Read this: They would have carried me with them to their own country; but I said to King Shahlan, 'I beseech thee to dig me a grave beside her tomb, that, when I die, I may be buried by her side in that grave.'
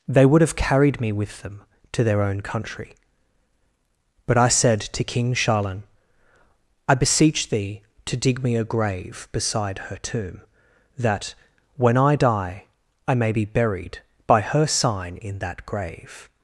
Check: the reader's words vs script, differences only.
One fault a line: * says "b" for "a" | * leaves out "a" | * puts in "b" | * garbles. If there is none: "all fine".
* says "sign" for "side"